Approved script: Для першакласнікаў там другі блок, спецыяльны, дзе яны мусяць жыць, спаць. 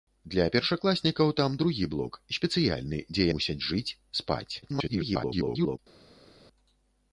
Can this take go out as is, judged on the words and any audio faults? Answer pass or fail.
fail